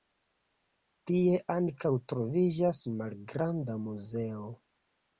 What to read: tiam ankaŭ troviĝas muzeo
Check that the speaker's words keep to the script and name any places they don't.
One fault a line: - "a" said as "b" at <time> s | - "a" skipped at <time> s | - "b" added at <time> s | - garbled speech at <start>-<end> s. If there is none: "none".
- "tiam" said as "tie" at 1.1 s
- "malgranda" added at 3.0 s